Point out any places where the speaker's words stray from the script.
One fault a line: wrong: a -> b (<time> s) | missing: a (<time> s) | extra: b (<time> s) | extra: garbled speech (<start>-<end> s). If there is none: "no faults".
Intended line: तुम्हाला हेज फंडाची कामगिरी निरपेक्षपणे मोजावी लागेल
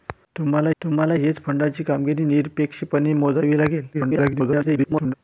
extra: तुम्हाला (0.8 s)
extra: garbled speech (3.9-5.1 s)